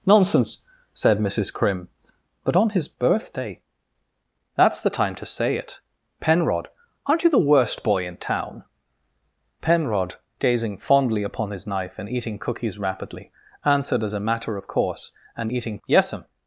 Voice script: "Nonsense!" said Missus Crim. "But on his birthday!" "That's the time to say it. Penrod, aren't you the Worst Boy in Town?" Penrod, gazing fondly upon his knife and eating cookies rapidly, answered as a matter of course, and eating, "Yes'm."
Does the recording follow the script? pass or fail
pass